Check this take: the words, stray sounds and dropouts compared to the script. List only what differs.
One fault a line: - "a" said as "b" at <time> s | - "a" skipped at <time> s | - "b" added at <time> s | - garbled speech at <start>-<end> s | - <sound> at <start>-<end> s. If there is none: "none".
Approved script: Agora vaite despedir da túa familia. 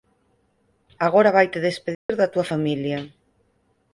- dropout at 1.9-2.1 s